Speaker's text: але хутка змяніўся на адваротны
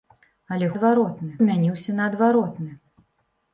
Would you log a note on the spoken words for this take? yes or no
yes